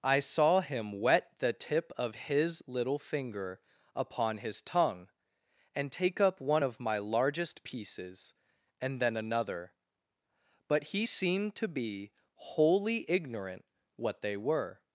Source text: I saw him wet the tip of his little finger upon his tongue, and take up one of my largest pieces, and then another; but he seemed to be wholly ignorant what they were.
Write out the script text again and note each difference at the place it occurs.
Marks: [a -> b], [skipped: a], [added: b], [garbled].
I saw him wet the tip of his little finger upon his tongue, and take up one of my largest pieces, and then another; but he seemed to be wholly ignorant what they were.